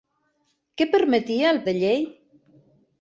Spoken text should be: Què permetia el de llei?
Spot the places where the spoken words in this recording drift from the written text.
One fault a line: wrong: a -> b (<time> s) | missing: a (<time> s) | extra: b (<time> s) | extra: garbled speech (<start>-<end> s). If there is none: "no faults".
no faults